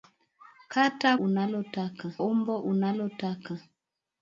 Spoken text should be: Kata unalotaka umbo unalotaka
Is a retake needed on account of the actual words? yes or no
no